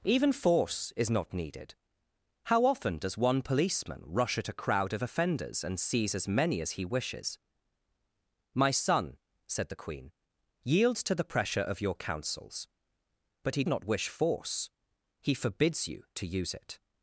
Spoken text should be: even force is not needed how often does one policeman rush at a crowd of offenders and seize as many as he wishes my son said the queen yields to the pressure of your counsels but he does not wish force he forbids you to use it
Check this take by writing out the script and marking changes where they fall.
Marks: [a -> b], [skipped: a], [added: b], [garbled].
even force is not needed how often does one policeman rush at a crowd of offenders and seize as many as he wishes my son said the queen yields to the pressure of your counsels but he [skipped: does] not wish force he forbids you to use it